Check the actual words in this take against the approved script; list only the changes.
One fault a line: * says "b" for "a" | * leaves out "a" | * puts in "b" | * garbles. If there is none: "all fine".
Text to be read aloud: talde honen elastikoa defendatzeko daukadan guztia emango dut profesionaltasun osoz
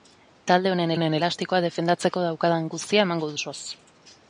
* puts in "honen"
* leaves out "dut profesionaltasun"